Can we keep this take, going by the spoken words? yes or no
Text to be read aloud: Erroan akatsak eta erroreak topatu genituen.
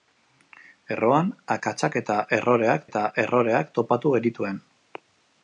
no